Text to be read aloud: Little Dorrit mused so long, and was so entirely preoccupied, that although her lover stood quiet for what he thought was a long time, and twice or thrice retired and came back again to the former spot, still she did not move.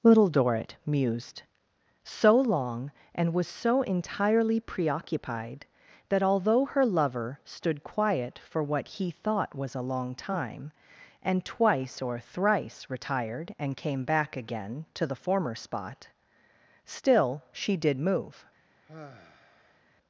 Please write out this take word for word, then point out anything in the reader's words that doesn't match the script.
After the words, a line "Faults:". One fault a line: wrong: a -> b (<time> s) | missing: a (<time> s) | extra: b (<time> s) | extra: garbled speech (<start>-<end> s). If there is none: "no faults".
Little Dorrit mused so long, and was so entirely preoccupied, that although her lover stood quiet for what he thought was a long time, and twice or thrice retired and came back again to the former spot, still she did move.
Faults:
missing: not (18.0 s)